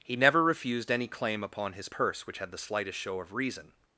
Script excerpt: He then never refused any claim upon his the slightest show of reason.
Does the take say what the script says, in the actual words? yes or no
no